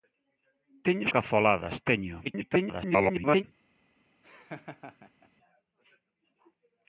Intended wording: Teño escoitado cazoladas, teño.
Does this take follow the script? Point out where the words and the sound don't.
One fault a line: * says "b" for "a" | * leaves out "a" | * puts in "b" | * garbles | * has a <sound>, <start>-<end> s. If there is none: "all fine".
* leaves out "escoitado"
* garbles
* has a laugh, 4.2-5.3 s